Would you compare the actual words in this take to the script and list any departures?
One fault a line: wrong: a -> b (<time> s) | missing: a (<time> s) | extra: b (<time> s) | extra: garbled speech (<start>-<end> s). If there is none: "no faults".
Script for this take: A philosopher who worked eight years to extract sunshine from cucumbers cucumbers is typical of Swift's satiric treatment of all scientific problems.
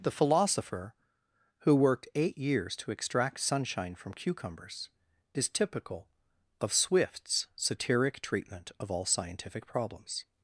wrong: A -> The (0.0 s)
missing: cucumbers (4.9 s)